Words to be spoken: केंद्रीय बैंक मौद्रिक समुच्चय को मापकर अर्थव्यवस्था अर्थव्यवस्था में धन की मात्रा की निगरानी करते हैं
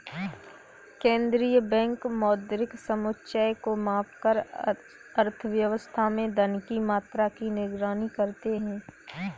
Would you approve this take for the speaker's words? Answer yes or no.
no